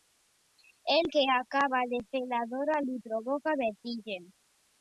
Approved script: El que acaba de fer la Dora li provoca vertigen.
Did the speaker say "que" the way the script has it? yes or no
yes